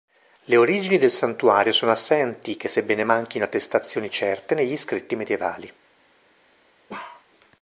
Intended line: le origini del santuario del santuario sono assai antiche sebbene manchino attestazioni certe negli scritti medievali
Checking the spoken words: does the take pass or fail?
fail